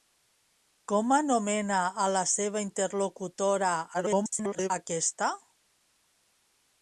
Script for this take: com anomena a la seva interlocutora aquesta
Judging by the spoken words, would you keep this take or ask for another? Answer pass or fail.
fail